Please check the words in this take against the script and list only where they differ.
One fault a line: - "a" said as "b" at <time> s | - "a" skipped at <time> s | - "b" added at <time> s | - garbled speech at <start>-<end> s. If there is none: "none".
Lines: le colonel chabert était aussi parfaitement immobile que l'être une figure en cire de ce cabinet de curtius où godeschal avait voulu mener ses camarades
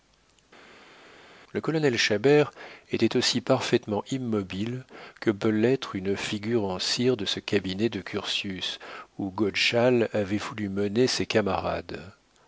- "peut" added at 5.3 s